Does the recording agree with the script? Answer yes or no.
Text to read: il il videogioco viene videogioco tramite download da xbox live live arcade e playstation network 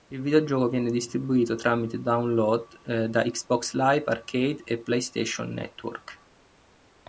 no